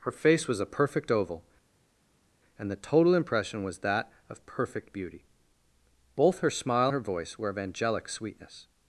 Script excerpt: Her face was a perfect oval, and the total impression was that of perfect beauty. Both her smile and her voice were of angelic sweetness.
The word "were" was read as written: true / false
true